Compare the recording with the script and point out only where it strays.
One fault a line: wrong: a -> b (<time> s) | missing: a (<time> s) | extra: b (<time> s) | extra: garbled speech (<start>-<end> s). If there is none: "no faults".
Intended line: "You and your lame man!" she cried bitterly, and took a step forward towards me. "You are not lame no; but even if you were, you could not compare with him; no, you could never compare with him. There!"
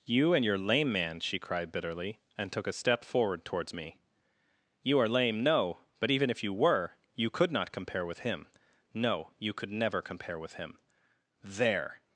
missing: not (5.1 s)